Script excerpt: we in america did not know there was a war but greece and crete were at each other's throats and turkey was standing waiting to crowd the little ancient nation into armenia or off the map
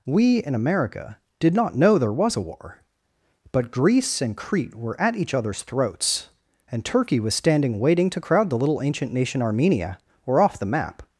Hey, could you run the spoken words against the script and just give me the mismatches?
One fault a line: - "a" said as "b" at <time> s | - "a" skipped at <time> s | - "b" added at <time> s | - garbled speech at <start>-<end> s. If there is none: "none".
- "into" skipped at 9.4 s